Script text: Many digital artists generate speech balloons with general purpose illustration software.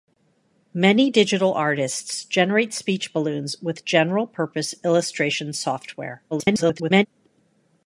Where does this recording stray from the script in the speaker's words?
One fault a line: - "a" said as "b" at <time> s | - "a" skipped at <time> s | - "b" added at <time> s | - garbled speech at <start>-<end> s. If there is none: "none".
- garbled speech at 6.3-7.1 s